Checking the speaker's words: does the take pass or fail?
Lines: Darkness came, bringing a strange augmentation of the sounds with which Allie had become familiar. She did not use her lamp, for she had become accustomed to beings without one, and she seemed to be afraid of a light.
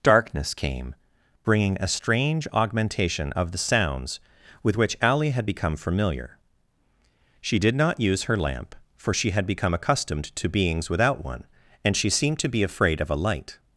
pass